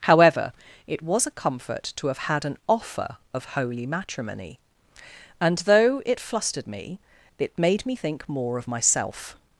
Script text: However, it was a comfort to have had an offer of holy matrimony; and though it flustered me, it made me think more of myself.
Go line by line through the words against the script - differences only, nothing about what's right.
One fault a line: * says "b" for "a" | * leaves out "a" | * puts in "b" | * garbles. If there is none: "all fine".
all fine